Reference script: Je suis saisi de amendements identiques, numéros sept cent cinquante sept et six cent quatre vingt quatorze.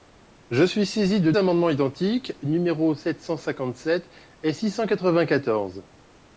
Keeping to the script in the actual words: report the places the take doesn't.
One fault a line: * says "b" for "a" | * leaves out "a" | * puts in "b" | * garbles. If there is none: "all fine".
all fine